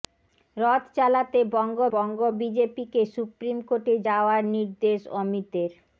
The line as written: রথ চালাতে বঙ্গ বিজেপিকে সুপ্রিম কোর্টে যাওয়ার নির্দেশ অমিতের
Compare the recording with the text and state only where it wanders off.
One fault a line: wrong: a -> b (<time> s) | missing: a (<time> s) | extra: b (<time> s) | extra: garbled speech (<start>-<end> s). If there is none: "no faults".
extra: বঙ্গ (1.9 s)